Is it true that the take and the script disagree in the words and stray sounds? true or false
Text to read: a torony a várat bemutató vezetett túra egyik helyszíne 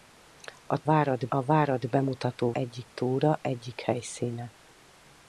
true